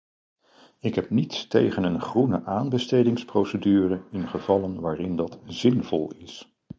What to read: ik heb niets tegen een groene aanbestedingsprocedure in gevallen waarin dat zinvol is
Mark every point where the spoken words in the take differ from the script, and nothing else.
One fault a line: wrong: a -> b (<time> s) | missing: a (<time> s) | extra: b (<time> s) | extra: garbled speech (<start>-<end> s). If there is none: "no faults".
no faults